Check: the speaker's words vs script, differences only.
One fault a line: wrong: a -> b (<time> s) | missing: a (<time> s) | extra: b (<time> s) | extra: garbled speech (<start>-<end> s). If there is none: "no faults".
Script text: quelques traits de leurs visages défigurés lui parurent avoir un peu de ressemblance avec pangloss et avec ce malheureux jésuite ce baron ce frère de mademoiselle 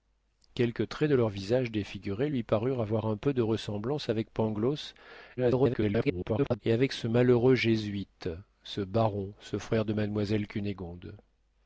extra: garbled speech (5.4-6.6 s)